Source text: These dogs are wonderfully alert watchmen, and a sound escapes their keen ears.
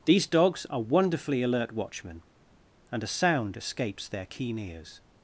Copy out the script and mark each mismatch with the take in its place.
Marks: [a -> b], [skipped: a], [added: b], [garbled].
These dogs are wonderfully alert watchmen, and a sound escapes their keen ears.